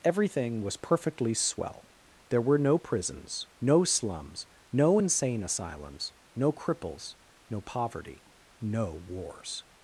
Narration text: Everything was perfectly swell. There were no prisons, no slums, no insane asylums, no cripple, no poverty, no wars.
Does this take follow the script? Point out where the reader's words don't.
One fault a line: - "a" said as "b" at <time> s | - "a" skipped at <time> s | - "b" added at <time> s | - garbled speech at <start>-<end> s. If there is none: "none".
- "cripple" said as "cripples" at 6.5 s